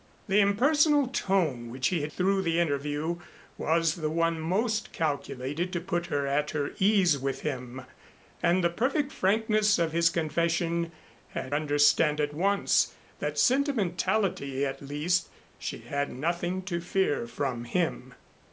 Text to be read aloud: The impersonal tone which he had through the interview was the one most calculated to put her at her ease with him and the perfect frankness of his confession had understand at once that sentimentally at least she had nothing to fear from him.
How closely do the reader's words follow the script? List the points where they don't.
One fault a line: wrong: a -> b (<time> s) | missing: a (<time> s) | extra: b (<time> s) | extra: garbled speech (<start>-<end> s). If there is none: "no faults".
no faults